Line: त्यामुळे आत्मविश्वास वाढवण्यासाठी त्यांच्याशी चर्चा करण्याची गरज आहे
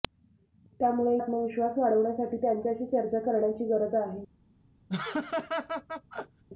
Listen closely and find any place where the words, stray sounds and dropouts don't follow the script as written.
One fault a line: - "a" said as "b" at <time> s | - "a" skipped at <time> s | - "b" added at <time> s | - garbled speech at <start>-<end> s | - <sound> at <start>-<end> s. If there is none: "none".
- laugh at 4.9-6.4 s